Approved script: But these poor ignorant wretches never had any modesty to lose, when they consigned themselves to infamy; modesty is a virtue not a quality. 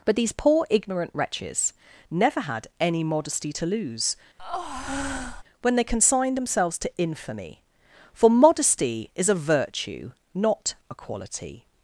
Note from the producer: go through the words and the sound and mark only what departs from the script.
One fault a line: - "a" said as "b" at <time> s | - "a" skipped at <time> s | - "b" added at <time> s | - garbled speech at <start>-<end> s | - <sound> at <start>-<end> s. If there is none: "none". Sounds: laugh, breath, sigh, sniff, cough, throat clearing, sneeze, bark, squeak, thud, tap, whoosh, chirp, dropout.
- breath at 4.4-5.4 s
- "for" added at 8.1 s